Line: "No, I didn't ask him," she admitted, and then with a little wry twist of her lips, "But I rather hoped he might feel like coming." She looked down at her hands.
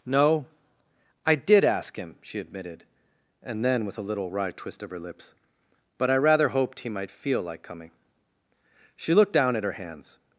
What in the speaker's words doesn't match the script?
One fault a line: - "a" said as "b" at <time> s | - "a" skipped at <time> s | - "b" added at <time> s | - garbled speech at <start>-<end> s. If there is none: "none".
- "didn't" said as "did" at 1.4 s